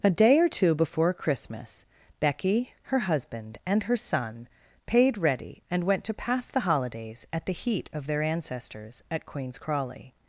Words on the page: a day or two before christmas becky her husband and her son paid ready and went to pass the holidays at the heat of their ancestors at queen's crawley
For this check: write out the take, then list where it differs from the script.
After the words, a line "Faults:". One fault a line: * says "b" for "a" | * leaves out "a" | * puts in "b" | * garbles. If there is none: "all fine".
a day or two before christmas becky her husband and her son paid ready and went to pass the holidays at the heat of their ancestors at queen's crawley
Faults:
all fine